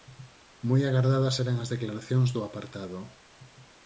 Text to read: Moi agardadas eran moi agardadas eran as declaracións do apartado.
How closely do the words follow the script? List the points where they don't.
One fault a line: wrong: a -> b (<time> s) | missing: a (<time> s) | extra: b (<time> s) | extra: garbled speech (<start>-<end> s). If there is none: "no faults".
missing: moi agardadas eran (1.6 s)